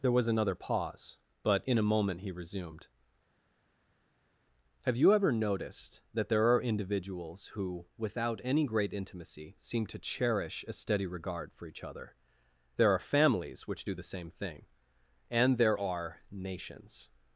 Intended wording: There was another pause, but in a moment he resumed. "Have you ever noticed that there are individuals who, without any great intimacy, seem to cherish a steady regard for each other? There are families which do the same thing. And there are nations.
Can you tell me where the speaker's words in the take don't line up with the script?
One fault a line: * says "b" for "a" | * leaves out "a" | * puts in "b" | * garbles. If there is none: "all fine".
all fine